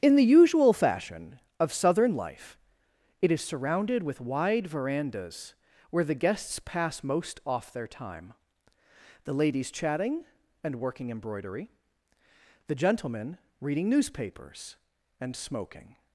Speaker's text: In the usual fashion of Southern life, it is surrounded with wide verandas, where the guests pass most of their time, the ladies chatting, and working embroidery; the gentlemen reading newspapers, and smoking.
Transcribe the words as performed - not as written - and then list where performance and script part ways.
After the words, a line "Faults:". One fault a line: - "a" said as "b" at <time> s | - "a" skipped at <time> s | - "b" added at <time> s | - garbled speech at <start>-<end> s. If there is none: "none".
In the usual fashion of Southern life, it is surrounded with wide verandas, where the guests pass most off their time, the ladies chatting, and working embroidery; the gentlemen reading newspapers, and smoking.
Faults:
- "of" said as "off" at 7.5 s